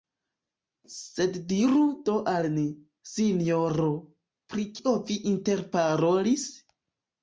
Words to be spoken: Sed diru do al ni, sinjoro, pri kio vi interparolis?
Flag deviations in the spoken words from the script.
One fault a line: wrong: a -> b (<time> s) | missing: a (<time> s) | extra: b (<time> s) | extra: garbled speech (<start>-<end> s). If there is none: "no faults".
no faults